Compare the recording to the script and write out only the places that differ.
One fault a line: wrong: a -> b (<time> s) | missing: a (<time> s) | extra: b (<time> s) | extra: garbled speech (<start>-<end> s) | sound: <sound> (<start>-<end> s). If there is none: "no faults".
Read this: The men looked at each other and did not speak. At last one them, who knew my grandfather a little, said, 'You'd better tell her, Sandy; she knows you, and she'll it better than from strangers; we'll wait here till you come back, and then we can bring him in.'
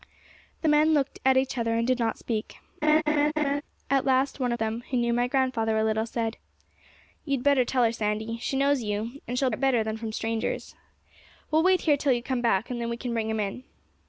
sound: laugh (2.8-3.6 s)